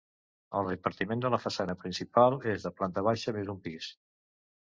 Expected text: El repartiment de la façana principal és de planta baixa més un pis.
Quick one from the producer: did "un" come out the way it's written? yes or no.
yes